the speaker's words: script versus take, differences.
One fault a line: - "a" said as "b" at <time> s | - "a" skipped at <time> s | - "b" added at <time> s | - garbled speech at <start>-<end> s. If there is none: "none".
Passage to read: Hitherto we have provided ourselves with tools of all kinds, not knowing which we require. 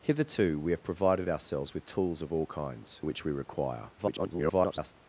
- "not knowing" skipped at 3.0 s
- garbled speech at 4.0-4.9 s